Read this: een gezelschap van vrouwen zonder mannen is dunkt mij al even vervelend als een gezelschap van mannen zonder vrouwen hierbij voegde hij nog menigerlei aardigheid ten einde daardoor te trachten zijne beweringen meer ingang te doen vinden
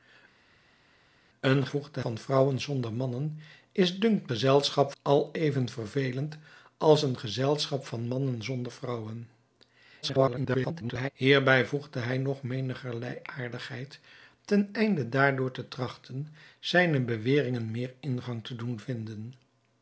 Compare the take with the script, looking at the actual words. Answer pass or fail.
fail